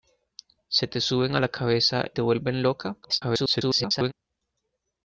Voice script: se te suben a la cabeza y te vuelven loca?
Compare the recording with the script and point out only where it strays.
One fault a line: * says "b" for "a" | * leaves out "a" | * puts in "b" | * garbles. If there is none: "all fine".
* leaves out "y"
* garbles